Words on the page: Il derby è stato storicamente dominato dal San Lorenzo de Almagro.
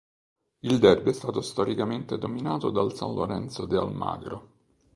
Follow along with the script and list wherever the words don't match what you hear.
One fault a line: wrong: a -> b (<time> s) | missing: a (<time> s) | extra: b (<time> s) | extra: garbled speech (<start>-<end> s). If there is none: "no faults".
no faults